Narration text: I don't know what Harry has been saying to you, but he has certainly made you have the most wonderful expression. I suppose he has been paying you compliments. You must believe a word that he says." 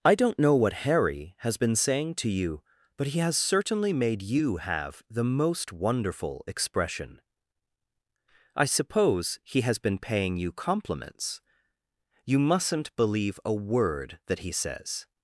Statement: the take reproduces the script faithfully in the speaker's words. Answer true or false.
false